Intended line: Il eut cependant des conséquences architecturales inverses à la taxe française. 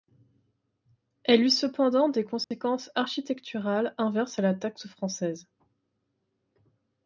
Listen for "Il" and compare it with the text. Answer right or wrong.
wrong